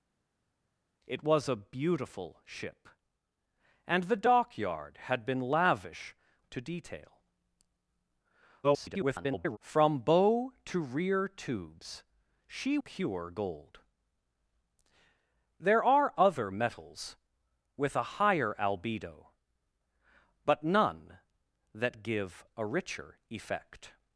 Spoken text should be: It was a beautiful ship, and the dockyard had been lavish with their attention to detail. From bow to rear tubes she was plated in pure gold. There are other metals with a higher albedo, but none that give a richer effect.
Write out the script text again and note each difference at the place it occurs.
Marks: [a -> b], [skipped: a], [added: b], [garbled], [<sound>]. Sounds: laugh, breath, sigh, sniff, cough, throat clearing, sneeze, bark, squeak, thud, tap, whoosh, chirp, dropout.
It was a beautiful ship, and the dockyard had been lavish [skipped: with their attention] to detail. [garbled] From bow to rear tubes she [skipped: was plated in] pure gold. There are other metals with a higher albedo, but none that give a richer effect.